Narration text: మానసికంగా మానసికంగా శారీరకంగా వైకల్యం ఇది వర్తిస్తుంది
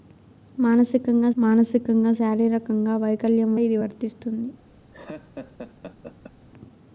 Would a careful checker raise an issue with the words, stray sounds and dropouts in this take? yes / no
yes